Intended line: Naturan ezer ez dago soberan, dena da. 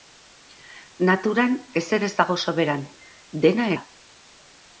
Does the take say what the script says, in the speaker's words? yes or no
yes